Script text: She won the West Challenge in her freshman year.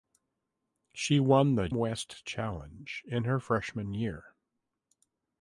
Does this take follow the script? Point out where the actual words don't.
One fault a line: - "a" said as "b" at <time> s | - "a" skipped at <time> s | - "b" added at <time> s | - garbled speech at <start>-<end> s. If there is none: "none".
none